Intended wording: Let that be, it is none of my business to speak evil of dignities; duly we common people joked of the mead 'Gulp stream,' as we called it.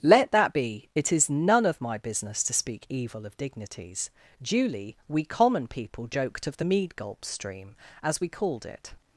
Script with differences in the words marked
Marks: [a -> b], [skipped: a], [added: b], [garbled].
Let that be, it is none of my business to speak evil of dignities; duly we common people joked of the mead 'Gulp stream,' as we called it.